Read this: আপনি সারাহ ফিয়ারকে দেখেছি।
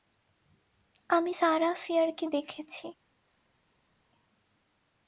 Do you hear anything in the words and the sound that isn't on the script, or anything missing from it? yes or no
yes